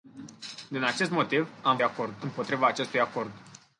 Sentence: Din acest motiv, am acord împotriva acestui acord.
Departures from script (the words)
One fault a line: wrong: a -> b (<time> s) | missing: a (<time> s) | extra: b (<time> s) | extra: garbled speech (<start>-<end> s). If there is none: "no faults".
no faults